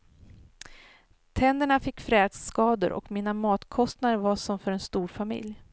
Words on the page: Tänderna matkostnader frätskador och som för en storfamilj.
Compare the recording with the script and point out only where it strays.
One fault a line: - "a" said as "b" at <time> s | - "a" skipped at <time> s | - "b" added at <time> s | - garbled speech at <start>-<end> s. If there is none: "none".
- "matkostnader" said as "fick" at 1.8 s
- "mina matkostnader var" added at 3.1 s